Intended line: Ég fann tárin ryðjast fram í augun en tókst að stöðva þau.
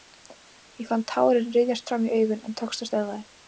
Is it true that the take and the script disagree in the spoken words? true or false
false